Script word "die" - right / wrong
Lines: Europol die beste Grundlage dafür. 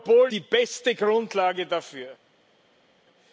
right